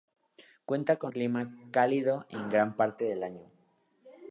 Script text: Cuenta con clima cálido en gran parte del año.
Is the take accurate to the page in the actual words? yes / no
yes